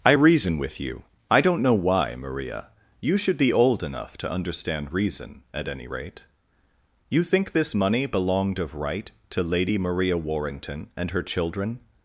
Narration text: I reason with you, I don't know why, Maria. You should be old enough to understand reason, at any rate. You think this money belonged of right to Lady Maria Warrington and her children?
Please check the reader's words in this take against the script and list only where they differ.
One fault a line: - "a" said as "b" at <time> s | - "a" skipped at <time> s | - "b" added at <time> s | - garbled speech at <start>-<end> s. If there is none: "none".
none